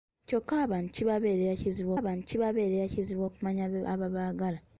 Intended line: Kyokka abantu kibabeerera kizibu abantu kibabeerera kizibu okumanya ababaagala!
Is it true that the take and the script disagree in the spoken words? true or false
false